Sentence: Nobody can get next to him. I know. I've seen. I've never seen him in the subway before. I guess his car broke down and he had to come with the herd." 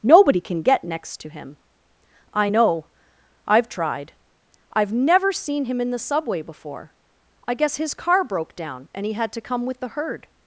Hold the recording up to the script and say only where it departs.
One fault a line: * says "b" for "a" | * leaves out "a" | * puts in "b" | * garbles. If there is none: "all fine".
* says "tried" for "seen"